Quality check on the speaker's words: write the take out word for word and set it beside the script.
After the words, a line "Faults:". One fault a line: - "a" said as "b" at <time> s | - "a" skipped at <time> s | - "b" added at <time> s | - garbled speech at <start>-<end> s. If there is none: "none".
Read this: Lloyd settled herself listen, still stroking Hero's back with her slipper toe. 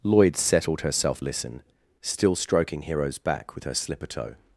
Lloyd settled herself listen, still stroking Hero's back with her slipper toe.
Faults:
none